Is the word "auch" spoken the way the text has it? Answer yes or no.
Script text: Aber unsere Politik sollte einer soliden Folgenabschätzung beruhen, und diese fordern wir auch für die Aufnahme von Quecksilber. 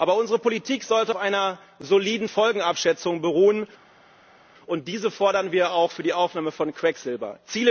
yes